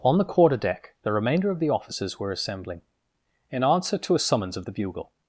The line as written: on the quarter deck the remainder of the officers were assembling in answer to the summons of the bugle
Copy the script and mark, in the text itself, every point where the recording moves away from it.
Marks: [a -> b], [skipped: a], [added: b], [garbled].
on the quarter deck the remainder of the officers were assembling in answer to [the -> a] summons of the bugle